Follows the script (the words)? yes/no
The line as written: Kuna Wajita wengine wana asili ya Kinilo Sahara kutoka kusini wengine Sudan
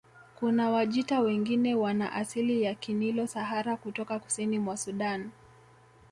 no